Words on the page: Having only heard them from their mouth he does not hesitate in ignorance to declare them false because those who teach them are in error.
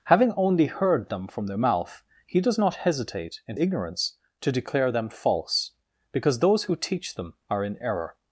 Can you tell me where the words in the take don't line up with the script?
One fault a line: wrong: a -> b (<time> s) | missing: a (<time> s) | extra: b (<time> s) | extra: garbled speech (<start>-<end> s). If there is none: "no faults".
no faults